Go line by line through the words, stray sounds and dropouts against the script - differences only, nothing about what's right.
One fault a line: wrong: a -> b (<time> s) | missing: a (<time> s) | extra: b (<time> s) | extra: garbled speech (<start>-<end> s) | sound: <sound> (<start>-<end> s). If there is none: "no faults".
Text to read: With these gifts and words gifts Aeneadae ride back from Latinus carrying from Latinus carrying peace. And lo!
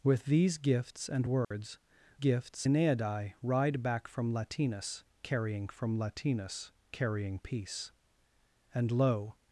sound: dropout (1.4-1.5 s)